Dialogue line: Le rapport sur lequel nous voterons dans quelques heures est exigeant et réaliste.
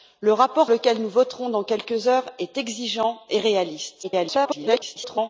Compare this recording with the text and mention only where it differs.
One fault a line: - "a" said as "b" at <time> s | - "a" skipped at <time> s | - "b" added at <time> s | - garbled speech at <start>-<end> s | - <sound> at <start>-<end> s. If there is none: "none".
- "sur" skipped at 0.7 s
- garbled speech at 4.0-5.3 s